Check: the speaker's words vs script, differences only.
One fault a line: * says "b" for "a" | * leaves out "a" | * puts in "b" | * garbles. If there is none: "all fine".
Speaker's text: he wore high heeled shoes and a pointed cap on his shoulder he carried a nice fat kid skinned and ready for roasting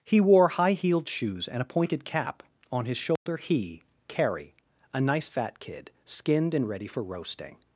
* says "carrie" for "carried"